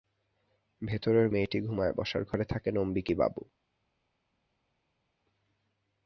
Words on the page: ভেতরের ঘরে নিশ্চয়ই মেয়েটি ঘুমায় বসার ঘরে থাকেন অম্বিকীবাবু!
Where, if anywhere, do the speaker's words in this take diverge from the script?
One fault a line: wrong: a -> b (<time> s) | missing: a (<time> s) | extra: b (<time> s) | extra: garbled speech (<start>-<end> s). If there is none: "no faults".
missing: ঘরে নিশ্চয়ই (1.3 s)